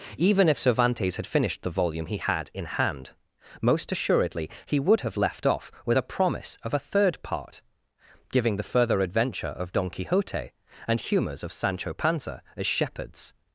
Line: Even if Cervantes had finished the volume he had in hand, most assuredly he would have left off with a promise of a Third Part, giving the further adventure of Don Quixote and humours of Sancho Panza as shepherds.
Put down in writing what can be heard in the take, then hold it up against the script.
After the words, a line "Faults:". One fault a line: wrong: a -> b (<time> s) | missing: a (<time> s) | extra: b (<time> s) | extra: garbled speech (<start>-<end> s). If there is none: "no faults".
Even if Cervantes had finished the volume he had in hand, most assuredly he would have left off with a promise of a Third Part, giving the further adventure of Don Quixote and humours of Sancho Panza as shepherds.
Faults:
no faults